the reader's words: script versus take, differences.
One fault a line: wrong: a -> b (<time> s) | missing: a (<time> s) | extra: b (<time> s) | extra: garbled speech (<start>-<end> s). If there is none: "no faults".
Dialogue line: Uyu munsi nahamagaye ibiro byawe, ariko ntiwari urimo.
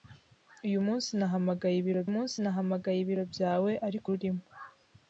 extra: munsi nahamagaye ibiro (2.1 s)
missing: ntiwari (4.1 s)